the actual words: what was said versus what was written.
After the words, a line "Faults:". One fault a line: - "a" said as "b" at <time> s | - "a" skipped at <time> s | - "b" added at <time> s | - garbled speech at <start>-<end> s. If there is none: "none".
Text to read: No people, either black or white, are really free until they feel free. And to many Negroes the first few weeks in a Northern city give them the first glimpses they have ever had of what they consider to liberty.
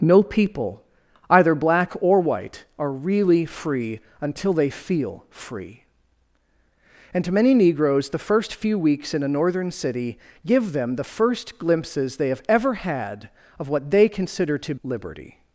No people, either black or white, are really free until they feel free. And to many Negroes the first few weeks in a Northern city give them the first glimpses they have ever had of what they consider to liberty.
Faults:
none